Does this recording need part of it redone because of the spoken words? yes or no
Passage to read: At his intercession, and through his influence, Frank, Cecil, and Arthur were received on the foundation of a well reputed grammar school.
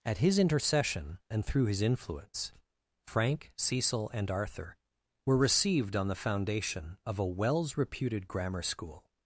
yes